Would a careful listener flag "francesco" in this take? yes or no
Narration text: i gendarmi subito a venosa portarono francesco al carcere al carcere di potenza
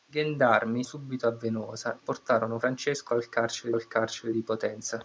no